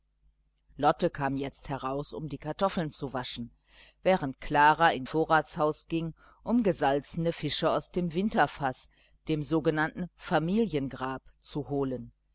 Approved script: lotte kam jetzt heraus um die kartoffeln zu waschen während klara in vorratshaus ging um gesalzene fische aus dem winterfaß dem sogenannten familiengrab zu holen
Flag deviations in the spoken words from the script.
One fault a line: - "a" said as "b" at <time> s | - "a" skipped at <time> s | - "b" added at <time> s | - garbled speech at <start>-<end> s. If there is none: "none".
none